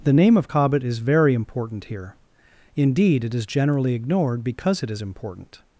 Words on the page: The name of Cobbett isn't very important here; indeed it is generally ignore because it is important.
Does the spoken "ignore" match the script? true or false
false